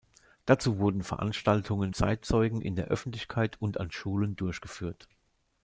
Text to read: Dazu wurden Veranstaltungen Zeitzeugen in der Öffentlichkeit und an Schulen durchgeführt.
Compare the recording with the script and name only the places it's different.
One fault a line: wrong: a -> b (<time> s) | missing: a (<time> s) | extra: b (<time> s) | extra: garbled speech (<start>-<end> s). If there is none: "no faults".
no faults